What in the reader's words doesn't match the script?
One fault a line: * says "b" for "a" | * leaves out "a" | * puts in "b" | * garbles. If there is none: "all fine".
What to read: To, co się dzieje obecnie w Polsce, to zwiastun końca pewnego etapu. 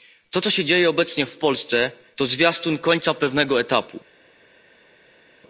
all fine